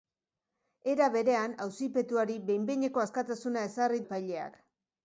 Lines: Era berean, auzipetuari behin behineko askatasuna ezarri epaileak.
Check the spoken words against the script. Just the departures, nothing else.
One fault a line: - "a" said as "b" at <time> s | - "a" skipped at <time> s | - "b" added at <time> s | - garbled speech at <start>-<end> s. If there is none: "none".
none